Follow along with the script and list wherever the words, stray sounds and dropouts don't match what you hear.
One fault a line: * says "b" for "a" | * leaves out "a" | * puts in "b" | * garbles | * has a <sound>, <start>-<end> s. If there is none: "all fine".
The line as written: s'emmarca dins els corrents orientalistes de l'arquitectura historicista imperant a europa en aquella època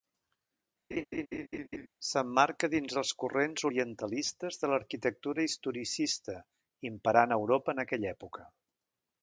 * has a laugh, 0.9-1.9 s